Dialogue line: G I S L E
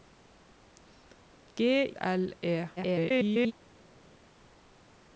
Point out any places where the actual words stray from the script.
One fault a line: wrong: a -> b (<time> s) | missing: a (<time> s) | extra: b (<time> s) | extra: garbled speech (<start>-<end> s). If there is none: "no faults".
missing: I S (1.9 s)
extra: garbled speech (2.8-3.5 s)